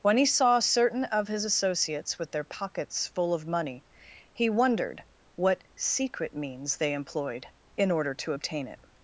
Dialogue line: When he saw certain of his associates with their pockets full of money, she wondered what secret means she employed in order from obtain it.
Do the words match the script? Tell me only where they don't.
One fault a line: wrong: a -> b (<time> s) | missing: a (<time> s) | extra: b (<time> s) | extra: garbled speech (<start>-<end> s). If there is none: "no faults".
wrong: she -> he (4.3 s)
wrong: she -> they (6.8 s)
wrong: from -> to (8.2 s)